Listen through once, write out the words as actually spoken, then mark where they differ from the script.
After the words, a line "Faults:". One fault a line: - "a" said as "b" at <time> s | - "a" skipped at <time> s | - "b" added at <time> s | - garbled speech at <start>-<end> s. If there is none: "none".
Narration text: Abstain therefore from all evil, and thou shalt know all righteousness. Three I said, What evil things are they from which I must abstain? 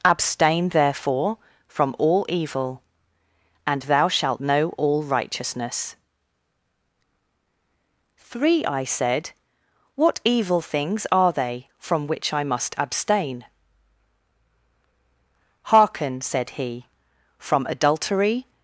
Abstain therefore from all evil, and thou shalt know all righteousness. Three I said, What evil things are they from which I must abstain? Hearken, said he; from adultery
Faults:
- "Hearken said he from adultery" added at 15.6 s